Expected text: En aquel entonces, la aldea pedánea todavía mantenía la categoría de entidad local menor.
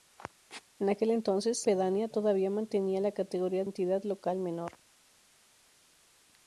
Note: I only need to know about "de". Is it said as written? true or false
false